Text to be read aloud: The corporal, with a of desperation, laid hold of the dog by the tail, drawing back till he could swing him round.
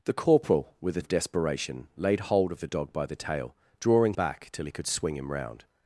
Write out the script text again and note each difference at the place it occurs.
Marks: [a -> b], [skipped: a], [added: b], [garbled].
The corporal, with a of desperation, laid hold of the dog by the tail, drawing back till he could swing him round.